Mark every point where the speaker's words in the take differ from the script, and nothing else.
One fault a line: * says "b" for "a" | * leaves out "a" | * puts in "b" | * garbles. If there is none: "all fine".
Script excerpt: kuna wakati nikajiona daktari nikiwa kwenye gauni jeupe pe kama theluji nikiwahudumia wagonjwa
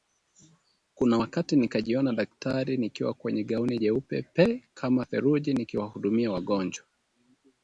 all fine